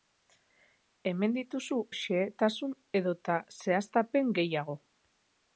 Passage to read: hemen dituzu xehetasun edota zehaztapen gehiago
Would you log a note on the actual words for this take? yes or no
no